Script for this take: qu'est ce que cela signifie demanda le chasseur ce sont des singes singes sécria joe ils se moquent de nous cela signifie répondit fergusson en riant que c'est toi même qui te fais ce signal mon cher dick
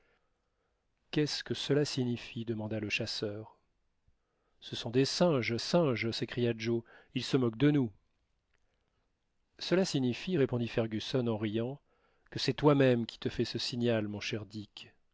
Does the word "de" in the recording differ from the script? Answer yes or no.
no